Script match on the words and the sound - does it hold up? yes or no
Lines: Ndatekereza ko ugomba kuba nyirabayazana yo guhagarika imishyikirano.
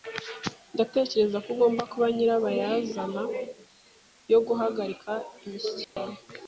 no